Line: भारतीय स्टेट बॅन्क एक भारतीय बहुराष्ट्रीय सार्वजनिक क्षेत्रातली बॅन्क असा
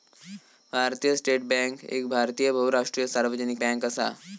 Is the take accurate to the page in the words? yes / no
no